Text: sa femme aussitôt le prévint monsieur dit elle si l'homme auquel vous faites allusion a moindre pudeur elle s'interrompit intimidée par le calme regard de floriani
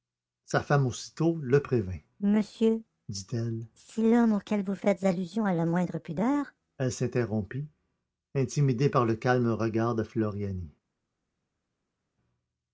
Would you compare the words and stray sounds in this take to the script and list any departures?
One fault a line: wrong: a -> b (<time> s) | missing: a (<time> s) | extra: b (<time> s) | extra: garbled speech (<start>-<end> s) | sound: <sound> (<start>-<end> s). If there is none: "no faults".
extra: la (5.5 s)